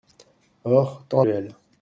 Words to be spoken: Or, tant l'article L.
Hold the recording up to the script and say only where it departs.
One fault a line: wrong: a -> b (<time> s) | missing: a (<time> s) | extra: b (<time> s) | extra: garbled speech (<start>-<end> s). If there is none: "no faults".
missing: l'article (1.2 s)